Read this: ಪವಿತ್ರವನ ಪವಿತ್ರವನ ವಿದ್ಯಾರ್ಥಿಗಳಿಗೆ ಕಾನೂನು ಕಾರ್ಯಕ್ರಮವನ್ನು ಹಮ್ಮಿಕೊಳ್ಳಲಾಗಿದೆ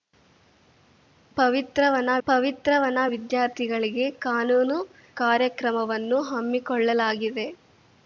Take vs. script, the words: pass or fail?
pass